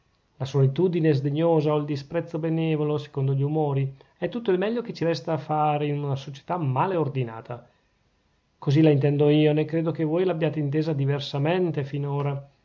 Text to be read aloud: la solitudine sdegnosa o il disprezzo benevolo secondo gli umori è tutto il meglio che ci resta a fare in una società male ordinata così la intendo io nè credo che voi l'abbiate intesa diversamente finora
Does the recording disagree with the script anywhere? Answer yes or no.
no